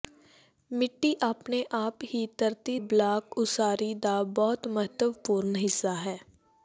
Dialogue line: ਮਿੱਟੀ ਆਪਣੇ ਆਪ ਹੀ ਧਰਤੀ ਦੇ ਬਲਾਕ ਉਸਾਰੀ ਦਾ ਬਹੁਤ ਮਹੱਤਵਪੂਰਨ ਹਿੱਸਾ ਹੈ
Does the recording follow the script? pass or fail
fail